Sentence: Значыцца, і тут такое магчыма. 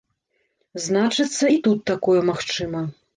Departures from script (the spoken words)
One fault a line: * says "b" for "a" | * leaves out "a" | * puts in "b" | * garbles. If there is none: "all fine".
all fine